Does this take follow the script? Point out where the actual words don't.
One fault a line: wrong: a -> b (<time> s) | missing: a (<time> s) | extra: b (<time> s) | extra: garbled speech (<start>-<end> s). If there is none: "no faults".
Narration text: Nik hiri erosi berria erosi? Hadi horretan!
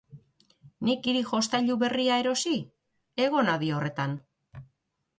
wrong: erosi -> jostailu (1.3 s)
extra: Egon (3.3 s)